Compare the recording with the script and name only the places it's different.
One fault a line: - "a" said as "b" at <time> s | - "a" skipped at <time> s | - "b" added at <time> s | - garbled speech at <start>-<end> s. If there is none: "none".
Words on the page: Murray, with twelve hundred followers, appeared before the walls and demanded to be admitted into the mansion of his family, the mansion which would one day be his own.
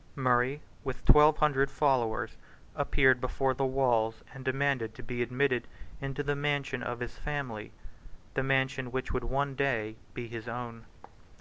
none